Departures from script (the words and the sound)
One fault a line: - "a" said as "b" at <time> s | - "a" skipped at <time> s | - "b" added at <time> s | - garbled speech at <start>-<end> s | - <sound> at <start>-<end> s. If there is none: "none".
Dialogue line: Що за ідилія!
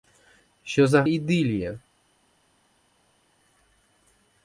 none